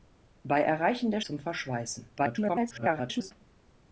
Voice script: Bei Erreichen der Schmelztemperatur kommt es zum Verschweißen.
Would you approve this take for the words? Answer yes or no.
no